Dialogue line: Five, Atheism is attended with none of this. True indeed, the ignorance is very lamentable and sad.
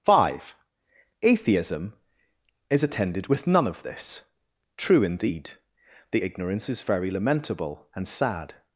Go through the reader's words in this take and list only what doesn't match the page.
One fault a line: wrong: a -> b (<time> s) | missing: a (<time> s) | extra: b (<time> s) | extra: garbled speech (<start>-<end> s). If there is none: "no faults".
no faults